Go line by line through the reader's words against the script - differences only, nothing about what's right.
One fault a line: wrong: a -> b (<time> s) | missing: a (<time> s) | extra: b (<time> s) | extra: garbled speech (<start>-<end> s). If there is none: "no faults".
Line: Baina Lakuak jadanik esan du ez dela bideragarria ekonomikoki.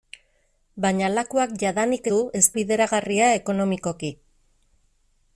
missing: esan (2.1 s)
missing: dela (2.4 s)